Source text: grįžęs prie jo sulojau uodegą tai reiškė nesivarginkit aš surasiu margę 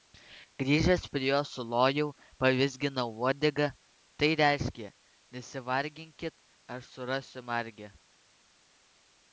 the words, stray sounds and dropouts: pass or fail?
fail